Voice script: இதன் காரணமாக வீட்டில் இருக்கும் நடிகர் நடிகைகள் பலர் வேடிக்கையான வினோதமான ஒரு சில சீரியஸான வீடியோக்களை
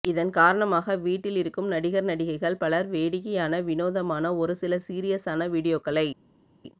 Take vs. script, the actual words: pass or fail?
pass